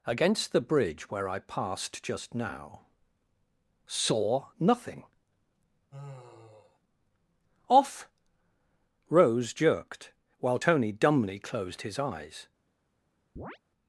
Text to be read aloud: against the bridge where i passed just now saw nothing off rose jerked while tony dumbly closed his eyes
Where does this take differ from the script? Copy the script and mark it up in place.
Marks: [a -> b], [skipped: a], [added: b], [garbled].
against the bridge where i passed just now saw nothing off rose jerked while tony dumbly closed his eyes